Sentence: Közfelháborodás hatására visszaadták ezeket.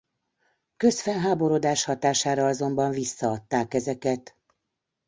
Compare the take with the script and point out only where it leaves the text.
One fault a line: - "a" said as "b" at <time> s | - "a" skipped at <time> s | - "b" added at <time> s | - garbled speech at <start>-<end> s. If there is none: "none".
- "azonban" added at 2.5 s